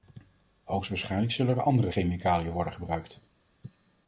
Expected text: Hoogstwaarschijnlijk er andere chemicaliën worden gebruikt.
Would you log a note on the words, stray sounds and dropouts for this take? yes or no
yes